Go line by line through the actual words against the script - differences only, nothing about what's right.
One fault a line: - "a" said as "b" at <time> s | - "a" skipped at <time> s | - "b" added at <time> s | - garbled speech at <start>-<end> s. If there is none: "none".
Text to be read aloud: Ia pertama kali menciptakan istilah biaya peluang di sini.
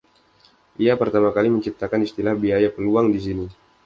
none